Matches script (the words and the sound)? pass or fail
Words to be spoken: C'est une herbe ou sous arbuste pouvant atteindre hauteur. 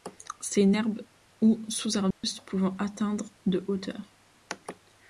fail